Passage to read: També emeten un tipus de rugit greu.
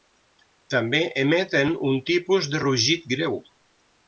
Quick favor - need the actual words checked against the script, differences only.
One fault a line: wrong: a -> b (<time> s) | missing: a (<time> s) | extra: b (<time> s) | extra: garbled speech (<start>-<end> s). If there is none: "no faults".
no faults